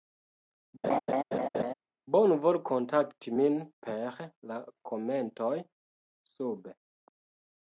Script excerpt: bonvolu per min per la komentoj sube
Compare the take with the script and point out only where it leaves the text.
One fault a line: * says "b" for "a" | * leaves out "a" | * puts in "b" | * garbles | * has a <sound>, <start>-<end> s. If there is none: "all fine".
* has a laugh, 0.8-1.7 s
* says "kontakti" for "per"